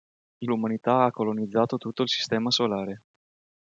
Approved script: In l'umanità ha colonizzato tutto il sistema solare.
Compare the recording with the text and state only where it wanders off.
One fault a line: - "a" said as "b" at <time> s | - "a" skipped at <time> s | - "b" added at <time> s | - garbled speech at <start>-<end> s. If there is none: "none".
none